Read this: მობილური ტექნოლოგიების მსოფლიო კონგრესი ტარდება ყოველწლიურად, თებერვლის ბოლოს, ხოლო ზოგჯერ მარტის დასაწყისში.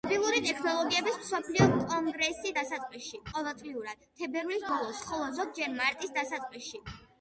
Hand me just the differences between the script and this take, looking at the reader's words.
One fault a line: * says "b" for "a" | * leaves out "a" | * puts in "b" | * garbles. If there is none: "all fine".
* says "დასაწყისში" for "ტარდება"